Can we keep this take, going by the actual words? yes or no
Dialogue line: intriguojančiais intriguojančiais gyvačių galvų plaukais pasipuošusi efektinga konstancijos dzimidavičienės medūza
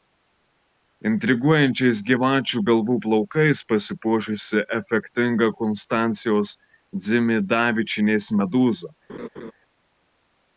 no